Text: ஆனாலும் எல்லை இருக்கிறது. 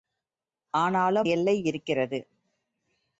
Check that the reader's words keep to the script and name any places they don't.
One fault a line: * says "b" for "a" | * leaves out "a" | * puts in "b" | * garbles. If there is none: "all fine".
all fine